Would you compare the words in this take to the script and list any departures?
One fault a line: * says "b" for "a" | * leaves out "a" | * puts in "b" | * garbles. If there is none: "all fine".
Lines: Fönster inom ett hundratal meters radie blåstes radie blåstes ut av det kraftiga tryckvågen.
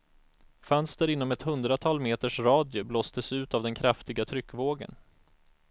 * leaves out "radie blåstes"
* says "den" for "det"